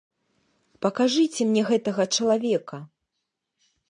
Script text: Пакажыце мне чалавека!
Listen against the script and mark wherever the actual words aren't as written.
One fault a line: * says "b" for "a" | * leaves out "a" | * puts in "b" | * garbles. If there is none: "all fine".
* puts in "гэтага"